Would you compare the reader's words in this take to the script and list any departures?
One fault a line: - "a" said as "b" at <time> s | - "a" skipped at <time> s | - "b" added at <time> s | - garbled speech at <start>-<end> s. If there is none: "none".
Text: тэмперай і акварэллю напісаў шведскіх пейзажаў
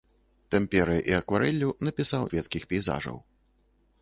none